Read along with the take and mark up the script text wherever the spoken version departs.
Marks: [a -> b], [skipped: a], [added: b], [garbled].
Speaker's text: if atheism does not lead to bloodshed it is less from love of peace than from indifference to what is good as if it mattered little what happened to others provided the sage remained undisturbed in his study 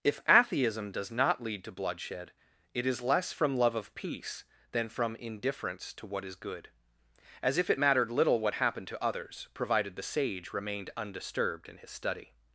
if atheism does not lead to bloodshed it is less from love of peace than from indifference to what is good as if it mattered little what happened to others provided the sage remained undisturbed in his study